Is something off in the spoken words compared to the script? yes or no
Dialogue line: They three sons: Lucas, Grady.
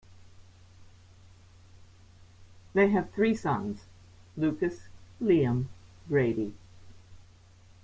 yes